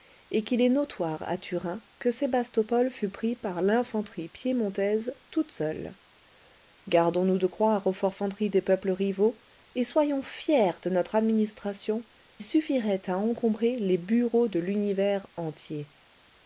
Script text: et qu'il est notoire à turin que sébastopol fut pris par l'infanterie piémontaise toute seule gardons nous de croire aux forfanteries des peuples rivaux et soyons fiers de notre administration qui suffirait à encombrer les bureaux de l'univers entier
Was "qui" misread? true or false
true